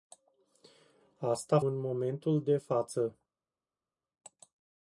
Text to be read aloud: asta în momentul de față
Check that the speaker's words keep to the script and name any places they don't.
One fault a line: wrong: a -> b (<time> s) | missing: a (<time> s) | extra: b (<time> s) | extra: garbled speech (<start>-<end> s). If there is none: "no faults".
no faults